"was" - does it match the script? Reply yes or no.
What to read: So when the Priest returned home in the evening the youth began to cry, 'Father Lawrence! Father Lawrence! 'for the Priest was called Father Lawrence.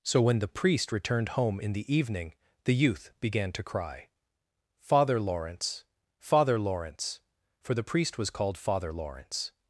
yes